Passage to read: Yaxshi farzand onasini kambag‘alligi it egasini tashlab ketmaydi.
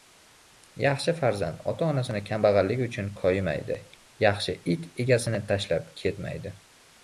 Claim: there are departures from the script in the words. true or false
true